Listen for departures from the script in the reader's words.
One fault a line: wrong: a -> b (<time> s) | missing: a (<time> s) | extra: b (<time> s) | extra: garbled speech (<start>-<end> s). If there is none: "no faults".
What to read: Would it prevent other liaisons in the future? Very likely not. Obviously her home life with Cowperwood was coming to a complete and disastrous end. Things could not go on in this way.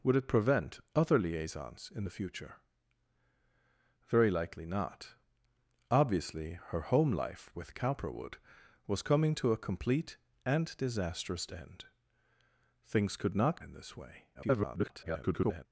missing: go on (13.6 s)
extra: garbled speech (14.3-15.7 s)